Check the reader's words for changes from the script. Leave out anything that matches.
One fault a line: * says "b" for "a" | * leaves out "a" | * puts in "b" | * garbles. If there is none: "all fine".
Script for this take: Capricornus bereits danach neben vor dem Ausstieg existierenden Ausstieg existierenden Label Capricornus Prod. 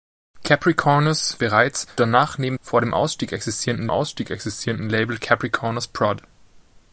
all fine